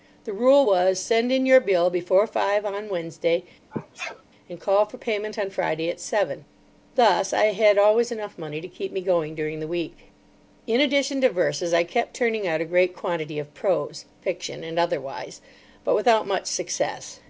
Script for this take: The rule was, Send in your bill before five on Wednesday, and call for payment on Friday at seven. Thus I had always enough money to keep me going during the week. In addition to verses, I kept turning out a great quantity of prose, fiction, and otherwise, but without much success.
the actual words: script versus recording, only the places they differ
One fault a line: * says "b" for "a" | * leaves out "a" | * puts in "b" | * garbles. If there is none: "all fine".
all fine